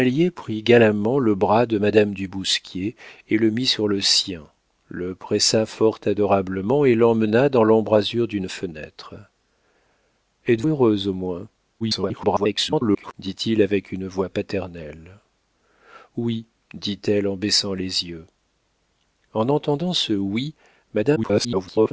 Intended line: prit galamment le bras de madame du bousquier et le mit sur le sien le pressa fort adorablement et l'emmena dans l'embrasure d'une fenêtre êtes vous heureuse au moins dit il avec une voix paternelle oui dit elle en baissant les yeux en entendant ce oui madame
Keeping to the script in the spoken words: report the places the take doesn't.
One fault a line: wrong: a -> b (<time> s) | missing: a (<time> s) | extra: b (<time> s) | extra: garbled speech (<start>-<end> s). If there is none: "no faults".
missing: vous (10.6 s)
extra: garbled speech (11.8-13.1 s)
extra: garbled speech (21.2-21.9 s)